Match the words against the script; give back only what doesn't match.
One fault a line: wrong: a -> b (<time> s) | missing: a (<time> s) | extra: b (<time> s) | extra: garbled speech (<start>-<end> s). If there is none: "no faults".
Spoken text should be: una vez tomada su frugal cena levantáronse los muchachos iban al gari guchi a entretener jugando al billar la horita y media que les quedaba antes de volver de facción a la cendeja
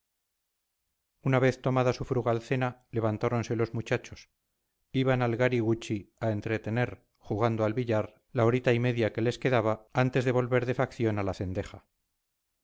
no faults